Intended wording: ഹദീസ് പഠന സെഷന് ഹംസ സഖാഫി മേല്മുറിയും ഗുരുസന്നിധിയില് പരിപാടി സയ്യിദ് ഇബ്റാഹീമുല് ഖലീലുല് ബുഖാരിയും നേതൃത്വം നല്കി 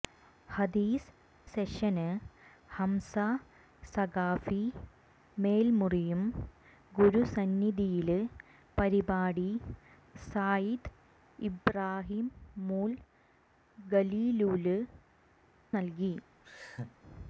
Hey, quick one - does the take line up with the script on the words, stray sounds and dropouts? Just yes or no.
no